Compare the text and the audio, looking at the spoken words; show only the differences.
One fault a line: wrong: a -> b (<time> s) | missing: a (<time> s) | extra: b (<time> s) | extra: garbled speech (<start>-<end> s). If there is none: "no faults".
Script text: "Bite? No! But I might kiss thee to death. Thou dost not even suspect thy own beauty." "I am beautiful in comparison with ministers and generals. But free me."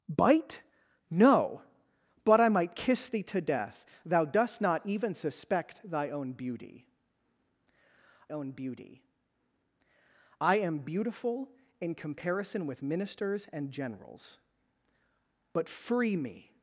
extra: own beauty (8.3 s)